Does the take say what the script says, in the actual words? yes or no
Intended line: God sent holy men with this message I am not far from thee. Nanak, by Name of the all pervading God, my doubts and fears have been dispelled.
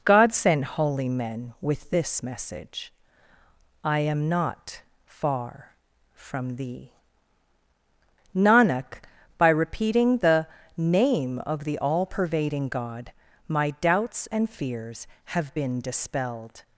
no